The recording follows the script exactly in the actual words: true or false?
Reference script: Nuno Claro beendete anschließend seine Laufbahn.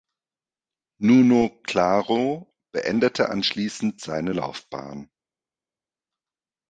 true